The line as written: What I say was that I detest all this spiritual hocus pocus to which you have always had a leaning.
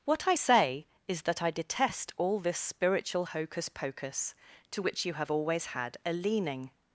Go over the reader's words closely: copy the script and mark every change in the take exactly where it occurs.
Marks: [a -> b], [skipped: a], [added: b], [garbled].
What I say [was -> is] that I detest all this spiritual hocus pocus to which you have always had a leaning.